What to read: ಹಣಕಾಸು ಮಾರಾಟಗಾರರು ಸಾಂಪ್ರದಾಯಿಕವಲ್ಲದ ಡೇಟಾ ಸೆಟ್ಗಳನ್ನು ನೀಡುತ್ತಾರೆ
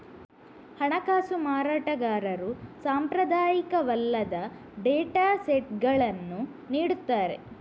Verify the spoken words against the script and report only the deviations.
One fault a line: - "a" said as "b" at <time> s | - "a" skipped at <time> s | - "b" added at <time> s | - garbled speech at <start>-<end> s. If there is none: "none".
none